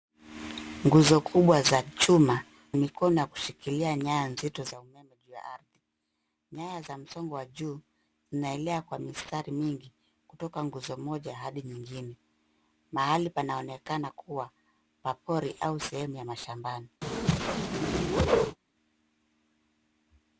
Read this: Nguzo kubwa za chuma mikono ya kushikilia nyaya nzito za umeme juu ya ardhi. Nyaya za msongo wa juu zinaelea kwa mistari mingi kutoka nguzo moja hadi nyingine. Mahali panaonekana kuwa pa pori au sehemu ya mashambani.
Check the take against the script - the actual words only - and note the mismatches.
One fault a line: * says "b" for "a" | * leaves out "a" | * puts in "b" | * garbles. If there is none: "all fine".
all fine